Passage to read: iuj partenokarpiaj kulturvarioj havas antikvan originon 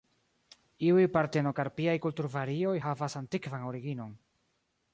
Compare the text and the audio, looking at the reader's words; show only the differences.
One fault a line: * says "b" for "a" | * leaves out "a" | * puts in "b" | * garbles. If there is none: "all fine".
all fine